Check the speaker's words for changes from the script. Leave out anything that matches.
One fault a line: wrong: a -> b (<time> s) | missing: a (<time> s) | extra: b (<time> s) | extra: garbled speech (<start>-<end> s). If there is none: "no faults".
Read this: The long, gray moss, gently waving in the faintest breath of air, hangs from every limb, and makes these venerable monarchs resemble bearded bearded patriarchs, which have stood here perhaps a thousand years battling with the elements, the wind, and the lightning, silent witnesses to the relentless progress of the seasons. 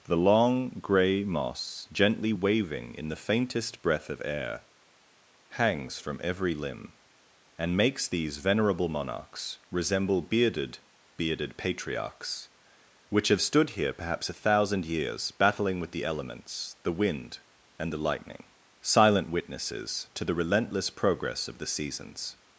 no faults